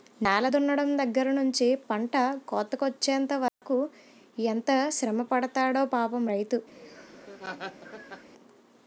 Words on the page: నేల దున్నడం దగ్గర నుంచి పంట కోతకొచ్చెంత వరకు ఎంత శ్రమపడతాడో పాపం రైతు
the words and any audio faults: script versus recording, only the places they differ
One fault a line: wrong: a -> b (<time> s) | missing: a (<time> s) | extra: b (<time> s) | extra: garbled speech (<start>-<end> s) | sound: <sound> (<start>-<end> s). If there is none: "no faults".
sound: dropout (3.5-3.6 s)
sound: laugh (6.7-8.3 s)